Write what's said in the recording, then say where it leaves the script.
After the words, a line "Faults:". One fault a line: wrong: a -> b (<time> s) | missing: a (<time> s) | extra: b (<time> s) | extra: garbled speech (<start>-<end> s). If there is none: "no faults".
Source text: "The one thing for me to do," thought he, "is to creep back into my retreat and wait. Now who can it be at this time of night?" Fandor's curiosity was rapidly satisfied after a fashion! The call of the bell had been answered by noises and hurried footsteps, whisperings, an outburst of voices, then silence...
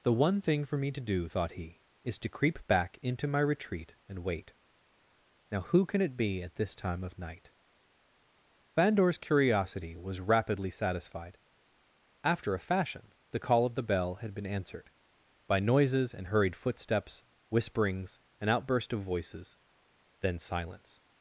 "The one thing for me to do," thought he, "is to creep back into my retreat and wait. Now who can it be at this time of night?" Fandor's curiosity was rapidly satisfied after a fashion! The call of the bell had been answered by noises and hurried footsteps, whisperings, an outburst of voices, then silence...
Faults:
no faults